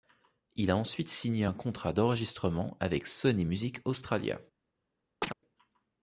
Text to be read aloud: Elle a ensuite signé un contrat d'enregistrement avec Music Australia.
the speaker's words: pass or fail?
fail